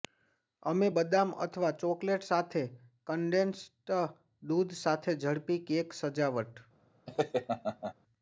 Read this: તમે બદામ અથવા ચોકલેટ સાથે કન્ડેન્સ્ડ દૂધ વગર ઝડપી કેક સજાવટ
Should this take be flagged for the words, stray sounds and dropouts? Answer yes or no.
yes